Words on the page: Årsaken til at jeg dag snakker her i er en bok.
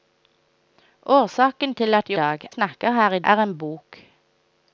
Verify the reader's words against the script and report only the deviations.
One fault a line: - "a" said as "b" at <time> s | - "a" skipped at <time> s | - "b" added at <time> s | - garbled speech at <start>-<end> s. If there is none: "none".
none